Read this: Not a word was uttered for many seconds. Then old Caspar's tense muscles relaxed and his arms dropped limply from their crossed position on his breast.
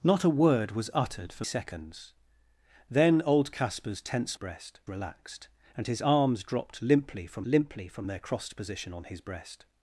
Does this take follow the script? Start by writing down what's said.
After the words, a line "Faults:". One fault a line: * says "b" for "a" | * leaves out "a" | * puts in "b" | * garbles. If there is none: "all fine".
Not a word was uttered for seconds. Then old Caspar's tense breast relaxed and his arms dropped limply from limply from their crossed position on his breast.
Faults:
* leaves out "many"
* says "breast" for "muscles"
* puts in "limply from"